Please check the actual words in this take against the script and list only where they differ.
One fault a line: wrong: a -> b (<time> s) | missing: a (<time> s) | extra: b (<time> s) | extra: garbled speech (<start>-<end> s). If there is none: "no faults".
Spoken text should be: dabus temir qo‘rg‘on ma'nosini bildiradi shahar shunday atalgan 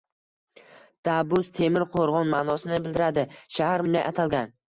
no faults